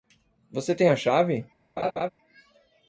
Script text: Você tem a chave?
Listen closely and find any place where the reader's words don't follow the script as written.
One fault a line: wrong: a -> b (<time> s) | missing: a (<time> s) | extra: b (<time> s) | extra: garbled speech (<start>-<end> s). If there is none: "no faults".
no faults